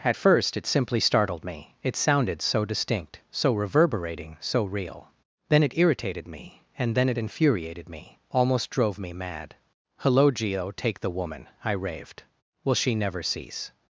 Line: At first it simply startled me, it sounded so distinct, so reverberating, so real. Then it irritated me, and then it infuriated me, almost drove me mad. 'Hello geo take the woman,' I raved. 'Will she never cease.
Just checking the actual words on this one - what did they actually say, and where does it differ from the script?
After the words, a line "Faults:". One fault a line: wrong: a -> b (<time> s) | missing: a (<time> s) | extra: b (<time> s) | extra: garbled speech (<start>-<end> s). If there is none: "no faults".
At first it simply startled me, it sounded so distinct, so reverberating, so real. Then it irritated me, and then it infuriated me, almost drove me mad. 'Hello geo take the woman,' I raved. 'Will she never cease.
Faults:
no faults